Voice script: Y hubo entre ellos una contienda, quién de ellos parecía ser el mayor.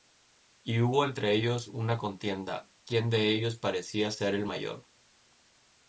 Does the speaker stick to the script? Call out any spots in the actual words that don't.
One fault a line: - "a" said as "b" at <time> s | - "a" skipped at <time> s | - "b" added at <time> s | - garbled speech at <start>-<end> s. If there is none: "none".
none